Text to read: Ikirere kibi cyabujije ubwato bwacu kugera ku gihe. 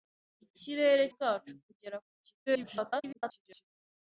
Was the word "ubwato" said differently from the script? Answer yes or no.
yes